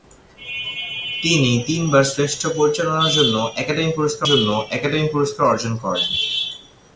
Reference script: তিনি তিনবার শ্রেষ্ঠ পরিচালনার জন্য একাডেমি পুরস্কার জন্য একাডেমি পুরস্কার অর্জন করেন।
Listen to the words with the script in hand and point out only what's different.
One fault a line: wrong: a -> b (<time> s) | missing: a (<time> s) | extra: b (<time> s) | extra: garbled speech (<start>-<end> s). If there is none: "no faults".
no faults